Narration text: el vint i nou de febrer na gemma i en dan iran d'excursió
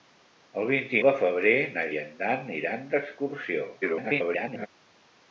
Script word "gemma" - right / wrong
wrong